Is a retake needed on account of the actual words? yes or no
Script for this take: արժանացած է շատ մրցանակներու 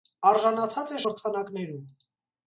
yes